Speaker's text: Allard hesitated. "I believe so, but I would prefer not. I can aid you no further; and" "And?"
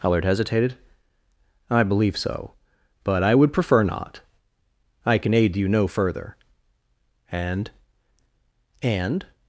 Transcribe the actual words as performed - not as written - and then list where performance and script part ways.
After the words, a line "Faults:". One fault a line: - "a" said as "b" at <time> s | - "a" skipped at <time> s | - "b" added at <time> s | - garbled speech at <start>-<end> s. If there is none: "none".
Allard hesitated. "I believe so, but I would prefer not. I can aid you no further; and" "And?"
Faults:
none